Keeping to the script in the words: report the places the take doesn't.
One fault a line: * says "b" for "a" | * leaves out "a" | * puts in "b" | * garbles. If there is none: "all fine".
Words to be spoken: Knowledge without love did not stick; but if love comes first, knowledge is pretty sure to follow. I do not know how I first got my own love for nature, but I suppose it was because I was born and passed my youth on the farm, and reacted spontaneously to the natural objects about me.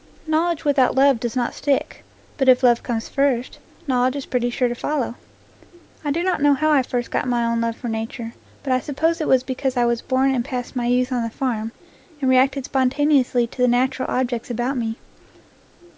* says "does" for "did"